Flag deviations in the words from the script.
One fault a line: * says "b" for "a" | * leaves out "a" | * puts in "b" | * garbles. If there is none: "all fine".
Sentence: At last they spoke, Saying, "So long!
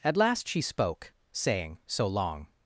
* says "she" for "they"